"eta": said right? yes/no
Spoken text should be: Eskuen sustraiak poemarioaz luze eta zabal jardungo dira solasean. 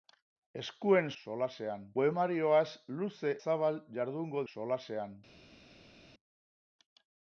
no